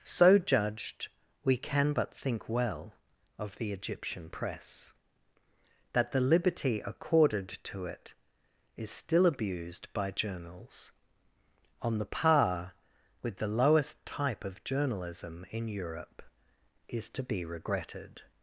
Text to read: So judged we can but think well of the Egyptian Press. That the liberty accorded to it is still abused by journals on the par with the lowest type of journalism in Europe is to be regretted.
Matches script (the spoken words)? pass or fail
pass